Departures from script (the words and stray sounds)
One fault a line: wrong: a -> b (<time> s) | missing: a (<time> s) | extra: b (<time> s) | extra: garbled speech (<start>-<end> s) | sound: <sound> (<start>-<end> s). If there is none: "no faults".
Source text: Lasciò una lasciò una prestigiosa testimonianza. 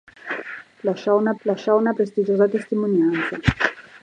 no faults